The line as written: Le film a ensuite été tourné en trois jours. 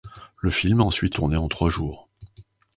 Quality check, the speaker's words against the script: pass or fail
fail